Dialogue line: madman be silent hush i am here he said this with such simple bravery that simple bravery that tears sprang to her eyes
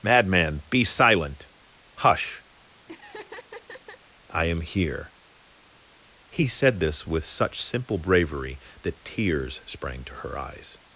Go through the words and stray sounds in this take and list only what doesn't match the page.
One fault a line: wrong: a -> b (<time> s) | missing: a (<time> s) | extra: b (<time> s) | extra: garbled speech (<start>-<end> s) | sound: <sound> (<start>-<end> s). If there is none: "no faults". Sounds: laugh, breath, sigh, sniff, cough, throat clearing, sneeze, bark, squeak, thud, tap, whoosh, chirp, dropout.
sound: laugh (2.9-4.0 s)
missing: simple bravery that (9.0 s)